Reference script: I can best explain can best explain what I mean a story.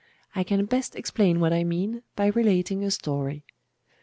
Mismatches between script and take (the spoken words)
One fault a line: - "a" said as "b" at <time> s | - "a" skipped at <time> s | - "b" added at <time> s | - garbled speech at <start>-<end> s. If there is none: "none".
- "can best explain" skipped at 1.4 s
- "by relating" added at 2.2 s